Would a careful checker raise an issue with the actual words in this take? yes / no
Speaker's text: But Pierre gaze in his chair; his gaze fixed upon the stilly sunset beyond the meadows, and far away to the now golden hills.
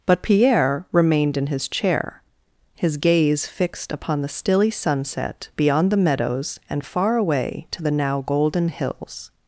yes